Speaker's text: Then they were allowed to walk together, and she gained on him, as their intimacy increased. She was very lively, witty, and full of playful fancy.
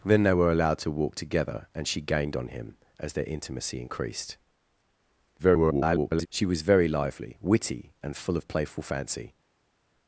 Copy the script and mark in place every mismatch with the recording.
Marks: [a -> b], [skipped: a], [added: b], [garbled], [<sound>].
Then they were allowed to walk together, and she gained on him, as their intimacy increased. [garbled] She was very lively, witty, and full of playful fancy.